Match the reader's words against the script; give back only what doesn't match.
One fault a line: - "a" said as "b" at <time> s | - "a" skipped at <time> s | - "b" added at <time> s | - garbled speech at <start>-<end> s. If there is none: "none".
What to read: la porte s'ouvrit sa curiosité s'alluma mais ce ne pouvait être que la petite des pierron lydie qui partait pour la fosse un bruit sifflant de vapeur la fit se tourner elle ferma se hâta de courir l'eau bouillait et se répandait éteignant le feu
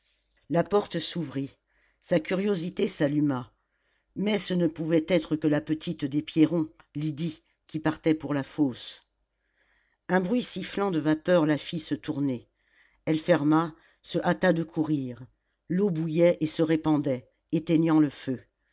none